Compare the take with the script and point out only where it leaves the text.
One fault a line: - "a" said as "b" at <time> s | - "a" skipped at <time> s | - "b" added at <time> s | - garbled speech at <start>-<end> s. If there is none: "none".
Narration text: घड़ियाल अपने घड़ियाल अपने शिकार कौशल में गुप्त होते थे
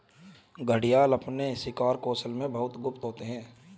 - "घड़ियाल अपने" skipped at 1.6 s
- "बहुत" added at 2.5 s
- "थे" said as "हैं" at 3.2 s